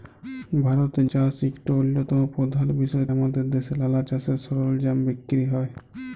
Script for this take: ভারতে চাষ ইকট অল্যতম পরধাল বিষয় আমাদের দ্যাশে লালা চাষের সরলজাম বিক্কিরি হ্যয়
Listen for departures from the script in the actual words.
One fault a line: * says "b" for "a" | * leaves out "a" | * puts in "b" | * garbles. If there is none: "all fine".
all fine